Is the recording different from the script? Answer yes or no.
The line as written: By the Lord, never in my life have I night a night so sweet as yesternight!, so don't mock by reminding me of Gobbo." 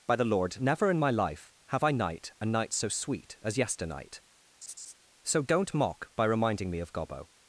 no